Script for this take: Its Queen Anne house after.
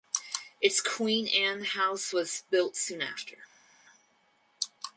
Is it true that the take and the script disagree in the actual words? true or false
true